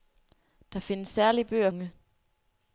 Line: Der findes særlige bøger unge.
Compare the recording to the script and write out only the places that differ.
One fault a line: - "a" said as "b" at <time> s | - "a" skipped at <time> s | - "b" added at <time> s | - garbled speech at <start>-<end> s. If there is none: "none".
none